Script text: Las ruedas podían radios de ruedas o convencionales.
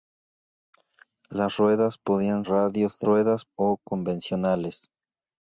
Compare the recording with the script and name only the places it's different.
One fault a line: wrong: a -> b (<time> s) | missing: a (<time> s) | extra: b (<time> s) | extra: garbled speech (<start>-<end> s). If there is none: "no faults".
no faults